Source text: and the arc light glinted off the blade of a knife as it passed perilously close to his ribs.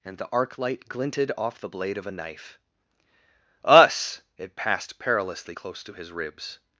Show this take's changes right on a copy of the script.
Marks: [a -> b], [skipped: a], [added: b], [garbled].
and the arc light glinted off the blade of a knife [as -> us] it passed perilously close to his ribs.